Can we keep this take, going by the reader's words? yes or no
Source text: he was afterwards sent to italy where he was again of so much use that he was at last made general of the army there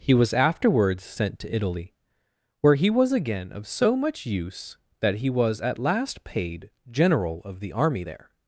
no